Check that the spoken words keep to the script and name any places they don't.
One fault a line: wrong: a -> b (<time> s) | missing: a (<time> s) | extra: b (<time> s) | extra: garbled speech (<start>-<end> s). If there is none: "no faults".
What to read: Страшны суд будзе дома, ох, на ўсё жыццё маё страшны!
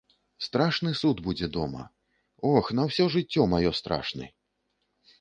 no faults